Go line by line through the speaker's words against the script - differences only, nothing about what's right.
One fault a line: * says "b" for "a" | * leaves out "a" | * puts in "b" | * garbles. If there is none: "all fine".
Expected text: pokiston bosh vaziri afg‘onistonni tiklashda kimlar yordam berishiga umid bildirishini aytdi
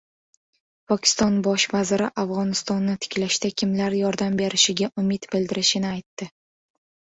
all fine